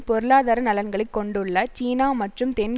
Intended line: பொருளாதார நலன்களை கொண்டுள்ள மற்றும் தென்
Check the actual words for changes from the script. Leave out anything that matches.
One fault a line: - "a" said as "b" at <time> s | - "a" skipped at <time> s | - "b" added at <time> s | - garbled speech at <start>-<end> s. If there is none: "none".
- "சீனா" added at 1.7 s